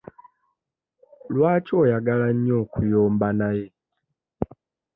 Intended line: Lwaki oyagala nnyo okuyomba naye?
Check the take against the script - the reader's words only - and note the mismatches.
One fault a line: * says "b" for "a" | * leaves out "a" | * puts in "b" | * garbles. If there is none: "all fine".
all fine